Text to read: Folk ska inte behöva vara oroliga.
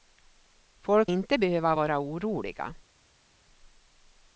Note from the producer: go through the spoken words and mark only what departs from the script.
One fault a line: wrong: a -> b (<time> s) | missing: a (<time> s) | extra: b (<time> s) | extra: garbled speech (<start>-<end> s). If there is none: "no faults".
missing: ska (1.1 s)